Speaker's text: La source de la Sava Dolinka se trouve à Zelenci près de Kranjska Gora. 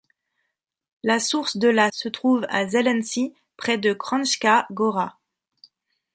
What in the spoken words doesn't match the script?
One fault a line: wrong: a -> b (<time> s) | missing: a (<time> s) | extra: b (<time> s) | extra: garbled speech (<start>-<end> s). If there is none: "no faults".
missing: Sava Dolinka (1.9 s)